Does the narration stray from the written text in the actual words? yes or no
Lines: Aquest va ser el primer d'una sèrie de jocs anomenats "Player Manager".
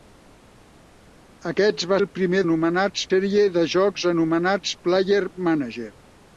yes